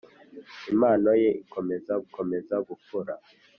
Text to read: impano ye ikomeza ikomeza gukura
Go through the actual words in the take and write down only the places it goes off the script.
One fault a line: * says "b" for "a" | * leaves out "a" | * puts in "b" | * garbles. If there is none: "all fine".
all fine